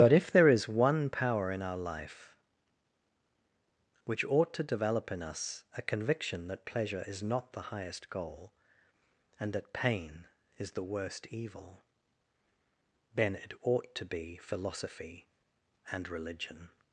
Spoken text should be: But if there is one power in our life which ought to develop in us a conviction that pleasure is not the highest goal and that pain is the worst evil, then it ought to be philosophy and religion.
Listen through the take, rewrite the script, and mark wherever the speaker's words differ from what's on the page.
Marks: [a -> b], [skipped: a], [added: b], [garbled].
But if there is one power in our life which ought to develop in us a conviction that pleasure is not the highest goal and that pain is the worst evil, then it ought to be philosophy and religion.